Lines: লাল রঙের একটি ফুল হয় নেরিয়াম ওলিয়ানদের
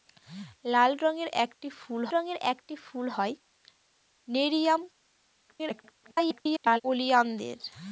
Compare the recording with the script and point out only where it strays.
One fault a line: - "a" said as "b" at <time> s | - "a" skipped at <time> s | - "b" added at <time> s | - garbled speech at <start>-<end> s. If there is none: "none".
- "রঙের একটি ফুল" added at 2.1 s
- garbled speech at 5.5-6.8 s